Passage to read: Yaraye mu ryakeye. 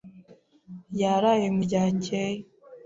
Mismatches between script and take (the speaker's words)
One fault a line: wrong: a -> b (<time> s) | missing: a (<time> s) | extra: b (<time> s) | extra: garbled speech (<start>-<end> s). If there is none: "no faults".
no faults